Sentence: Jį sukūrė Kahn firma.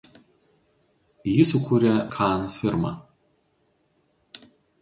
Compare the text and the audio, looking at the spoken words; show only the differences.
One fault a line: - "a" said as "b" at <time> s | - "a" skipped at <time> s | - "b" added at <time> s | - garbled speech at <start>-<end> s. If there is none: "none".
none